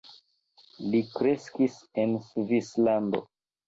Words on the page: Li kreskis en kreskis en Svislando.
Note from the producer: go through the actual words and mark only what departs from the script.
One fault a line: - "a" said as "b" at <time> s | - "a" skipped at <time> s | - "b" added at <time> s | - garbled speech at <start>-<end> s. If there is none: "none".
- "kreskis en" skipped at 2.2 s